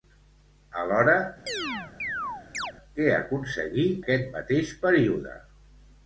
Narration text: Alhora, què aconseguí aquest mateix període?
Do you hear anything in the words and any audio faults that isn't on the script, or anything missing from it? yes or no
yes